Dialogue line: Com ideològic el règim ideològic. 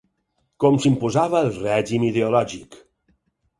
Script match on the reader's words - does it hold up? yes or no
no